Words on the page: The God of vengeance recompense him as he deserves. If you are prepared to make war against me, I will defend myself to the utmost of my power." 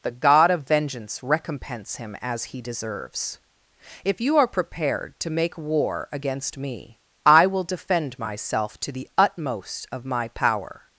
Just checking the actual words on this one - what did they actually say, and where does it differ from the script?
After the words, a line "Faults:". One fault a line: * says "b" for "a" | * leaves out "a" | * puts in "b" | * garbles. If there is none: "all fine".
The God of vengeance recompense him as he deserves. If you are prepared to make war against me, I will defend myself to the utmost of my power."
Faults:
all fine